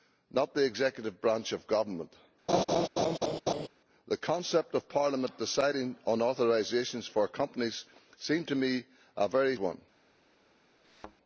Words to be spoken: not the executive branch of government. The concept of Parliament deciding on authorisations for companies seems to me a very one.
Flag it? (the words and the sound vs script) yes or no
yes